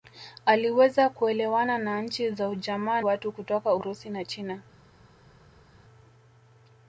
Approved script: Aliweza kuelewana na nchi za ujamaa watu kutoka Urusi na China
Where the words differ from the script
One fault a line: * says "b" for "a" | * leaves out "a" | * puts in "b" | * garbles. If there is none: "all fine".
all fine